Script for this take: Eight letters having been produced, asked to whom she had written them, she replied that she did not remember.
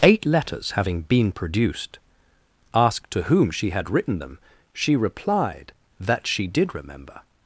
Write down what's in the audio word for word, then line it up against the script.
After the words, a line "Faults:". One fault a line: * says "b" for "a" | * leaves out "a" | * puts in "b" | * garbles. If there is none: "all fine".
Eight letters having been produced, asked to whom she had written them, she replied that she did remember.
Faults:
* leaves out "not"